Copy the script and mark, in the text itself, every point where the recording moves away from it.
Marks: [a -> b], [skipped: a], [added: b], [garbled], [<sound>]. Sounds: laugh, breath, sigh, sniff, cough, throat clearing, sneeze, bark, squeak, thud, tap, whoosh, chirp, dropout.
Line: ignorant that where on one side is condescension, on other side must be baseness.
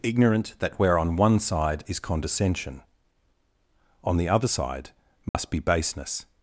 ignorant that where on one side is condescension, on [added: the] other side must [dropout] be baseness.